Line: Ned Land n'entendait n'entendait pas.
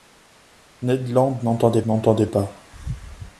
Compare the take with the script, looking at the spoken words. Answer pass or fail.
pass